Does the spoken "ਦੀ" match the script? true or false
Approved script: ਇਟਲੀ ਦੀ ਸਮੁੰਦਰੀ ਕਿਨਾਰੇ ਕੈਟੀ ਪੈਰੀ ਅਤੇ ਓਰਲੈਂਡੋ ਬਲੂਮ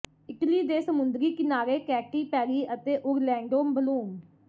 false